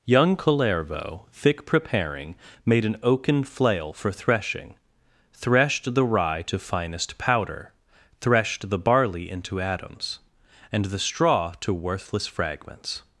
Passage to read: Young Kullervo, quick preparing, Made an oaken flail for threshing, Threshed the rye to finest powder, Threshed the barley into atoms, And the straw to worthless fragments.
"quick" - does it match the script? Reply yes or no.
no